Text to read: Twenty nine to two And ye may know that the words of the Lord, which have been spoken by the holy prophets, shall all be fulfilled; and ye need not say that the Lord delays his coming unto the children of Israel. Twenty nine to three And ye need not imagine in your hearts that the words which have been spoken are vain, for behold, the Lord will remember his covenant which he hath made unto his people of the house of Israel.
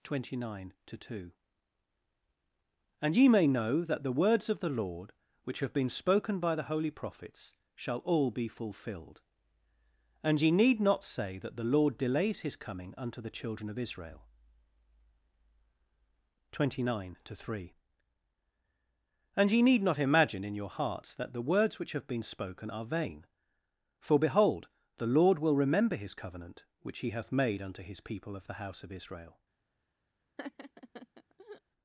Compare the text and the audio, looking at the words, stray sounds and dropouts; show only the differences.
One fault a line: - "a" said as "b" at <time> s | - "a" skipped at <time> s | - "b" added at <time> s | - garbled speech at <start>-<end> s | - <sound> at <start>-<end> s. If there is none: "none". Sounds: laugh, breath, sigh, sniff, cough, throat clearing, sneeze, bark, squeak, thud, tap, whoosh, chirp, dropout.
- laugh at 30.4-31.6 s